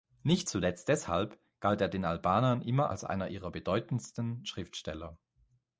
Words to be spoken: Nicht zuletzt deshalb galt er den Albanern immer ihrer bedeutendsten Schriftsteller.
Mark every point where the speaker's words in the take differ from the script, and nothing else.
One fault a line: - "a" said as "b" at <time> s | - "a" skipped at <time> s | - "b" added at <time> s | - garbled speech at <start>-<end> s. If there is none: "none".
- "als einer" added at 2.9 s